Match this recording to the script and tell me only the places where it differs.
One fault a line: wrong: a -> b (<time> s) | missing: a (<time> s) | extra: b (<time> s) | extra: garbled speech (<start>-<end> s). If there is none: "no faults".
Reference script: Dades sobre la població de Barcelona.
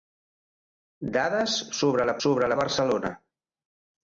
wrong: població -> sobre (2.3 s)